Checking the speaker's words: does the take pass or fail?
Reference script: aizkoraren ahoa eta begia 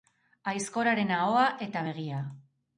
pass